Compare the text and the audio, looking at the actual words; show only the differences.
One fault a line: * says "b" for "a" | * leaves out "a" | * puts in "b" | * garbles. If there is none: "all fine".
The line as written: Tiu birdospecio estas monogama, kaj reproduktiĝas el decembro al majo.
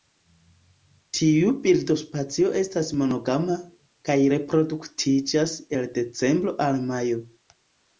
all fine